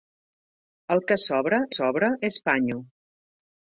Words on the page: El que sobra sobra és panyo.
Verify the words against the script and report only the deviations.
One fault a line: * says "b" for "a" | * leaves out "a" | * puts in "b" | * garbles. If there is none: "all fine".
all fine